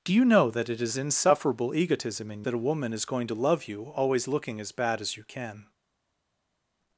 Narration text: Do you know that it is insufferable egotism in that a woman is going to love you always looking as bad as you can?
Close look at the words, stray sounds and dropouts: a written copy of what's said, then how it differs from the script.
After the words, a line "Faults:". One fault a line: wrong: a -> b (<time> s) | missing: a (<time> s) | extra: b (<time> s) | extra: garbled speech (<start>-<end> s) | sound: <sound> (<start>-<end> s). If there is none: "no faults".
Do you know that it is insufferable egotism in that a woman is going to love you always looking as bad as you can?
Faults:
no faults